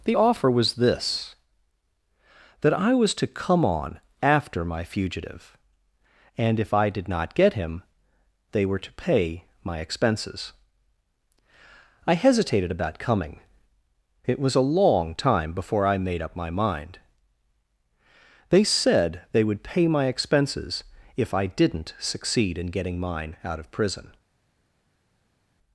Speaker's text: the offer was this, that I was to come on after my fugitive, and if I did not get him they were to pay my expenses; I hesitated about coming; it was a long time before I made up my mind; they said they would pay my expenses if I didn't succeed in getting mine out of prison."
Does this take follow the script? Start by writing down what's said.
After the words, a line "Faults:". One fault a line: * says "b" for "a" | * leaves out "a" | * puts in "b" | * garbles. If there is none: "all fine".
the offer was this, that I was to come on after my fugitive, and if I did not get him they were to pay my expenses; I hesitated about coming; it was a long time before I made up my mind; they said they would pay my expenses if I didn't succeed in getting mine out of prison."
Faults:
all fine